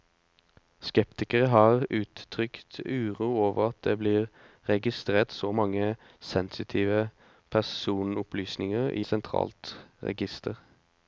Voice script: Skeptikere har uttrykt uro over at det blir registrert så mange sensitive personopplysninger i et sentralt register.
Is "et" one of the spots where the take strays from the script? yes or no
yes